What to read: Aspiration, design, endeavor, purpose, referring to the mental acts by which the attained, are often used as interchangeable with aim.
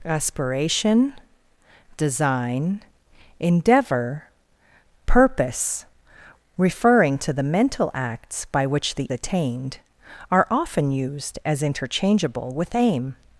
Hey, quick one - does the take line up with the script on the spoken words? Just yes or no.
yes